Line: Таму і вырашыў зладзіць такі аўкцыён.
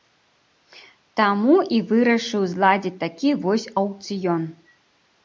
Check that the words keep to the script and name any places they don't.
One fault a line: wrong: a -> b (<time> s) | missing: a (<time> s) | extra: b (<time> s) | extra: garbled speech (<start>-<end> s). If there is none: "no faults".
extra: вось (3.5 s)